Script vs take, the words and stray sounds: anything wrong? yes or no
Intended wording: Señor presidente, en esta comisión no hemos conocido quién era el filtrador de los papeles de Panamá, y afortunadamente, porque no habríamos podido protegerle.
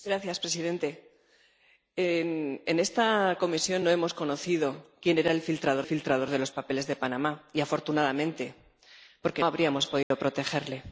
yes